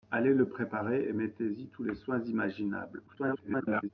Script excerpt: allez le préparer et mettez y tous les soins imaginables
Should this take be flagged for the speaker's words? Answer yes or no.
yes